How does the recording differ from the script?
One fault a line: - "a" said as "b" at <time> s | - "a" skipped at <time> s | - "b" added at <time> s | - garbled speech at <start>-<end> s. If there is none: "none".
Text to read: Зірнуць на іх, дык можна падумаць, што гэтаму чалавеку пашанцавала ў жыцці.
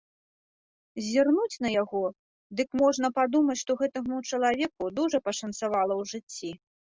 - "іх" said as "яго" at 1.8 s
- "дужа" added at 5.0 s